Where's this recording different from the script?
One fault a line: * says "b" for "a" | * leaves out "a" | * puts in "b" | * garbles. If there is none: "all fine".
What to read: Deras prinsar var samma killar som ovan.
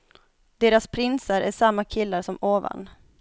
* says "är" for "var"